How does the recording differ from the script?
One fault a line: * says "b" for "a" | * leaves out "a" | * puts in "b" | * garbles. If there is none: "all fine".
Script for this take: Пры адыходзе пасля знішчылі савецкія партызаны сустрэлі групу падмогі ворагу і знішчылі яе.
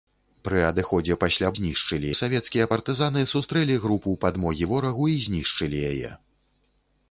all fine